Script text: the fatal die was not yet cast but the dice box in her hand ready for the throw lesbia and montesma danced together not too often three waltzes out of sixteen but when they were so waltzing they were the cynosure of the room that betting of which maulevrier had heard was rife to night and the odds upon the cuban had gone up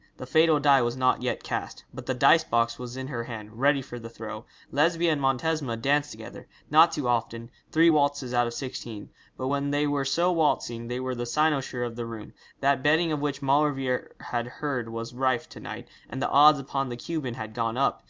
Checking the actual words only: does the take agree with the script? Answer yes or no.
no